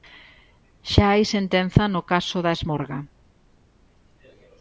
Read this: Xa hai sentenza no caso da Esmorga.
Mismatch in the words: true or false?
false